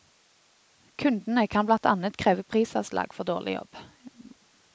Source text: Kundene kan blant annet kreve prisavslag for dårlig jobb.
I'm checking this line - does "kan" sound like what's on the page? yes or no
yes